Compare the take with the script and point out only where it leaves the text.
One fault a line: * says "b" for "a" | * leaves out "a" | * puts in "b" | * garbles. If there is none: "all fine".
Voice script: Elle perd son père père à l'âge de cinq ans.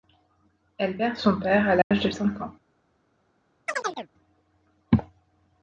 * leaves out "père"